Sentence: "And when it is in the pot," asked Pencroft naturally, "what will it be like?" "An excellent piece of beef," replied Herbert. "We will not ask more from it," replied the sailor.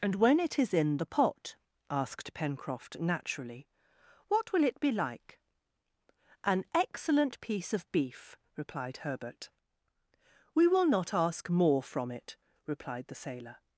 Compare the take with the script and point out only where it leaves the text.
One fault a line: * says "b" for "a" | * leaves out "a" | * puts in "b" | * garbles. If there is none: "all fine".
all fine